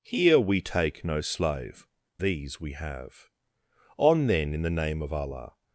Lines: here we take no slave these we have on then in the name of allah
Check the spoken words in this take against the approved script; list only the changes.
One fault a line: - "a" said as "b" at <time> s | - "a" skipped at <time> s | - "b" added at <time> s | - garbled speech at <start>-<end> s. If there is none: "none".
none